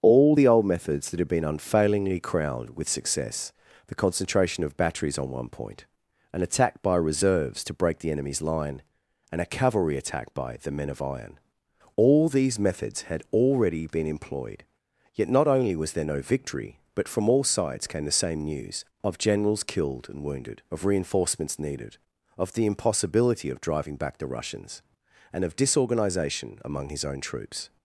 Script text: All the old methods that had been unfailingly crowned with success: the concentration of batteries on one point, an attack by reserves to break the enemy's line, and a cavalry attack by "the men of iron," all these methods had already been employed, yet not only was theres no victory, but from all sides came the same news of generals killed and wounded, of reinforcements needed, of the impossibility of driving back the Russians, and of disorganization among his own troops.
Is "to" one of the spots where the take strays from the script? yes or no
no